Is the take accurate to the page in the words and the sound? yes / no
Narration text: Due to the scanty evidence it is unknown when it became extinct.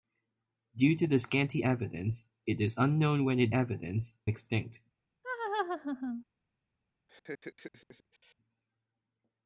no